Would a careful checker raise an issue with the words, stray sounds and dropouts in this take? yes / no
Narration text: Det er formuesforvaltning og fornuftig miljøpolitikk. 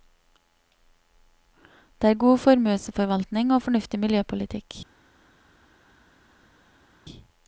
yes